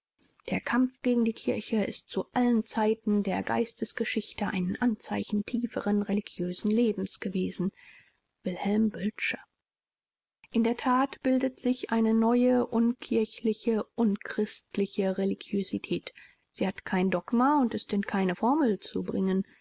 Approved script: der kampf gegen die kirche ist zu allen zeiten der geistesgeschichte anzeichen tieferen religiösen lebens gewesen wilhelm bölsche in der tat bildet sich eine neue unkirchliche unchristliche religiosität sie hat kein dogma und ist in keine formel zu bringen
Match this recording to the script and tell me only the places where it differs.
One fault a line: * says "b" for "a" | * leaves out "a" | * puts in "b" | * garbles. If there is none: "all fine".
* puts in "ein"